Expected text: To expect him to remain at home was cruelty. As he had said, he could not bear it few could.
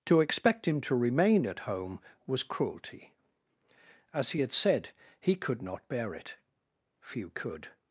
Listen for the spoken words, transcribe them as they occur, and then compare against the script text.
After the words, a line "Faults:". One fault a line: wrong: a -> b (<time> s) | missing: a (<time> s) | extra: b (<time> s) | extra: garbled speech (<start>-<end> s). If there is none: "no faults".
To expect him to remain at home was cruelty. As he had said, he could not bear it few could.
Faults:
no faults